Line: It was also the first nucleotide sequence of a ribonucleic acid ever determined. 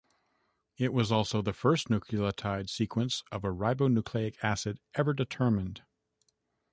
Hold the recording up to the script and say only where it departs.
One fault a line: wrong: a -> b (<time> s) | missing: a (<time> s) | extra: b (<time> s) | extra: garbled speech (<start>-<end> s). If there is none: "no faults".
no faults